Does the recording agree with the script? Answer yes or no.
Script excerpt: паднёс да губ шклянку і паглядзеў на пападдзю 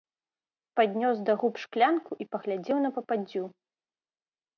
yes